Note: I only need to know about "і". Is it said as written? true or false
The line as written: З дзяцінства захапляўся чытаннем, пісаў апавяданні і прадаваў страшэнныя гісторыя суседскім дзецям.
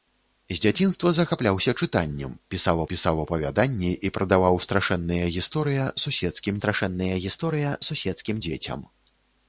true